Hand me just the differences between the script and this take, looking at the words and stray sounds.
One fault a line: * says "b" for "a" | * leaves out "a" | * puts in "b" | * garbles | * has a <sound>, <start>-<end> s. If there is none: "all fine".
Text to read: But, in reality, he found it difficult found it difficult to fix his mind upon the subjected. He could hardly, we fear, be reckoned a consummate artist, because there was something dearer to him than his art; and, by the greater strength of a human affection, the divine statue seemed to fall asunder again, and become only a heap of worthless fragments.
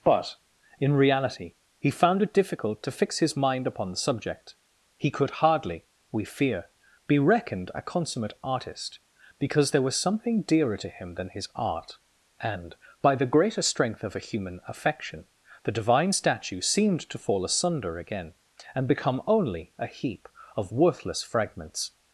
* leaves out "found it difficult"
* says "subject" for "subjected"